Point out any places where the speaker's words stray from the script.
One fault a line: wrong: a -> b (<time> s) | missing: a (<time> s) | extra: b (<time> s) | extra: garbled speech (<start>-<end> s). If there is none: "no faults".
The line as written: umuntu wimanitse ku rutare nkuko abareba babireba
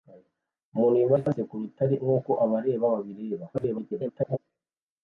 extra: garbled speech (3.5-4.4 s)